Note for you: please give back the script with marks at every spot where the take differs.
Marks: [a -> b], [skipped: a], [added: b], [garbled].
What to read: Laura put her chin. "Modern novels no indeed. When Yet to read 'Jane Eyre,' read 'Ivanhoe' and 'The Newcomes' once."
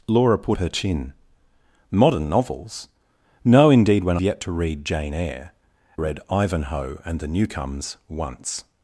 Laura put her chin. "Modern novels no indeed. When Yet to read 'Jane Eyre,' read 'Ivanhoe' and 'The Newcomes' once."